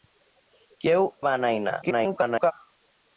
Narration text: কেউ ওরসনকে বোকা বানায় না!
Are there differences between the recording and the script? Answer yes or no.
yes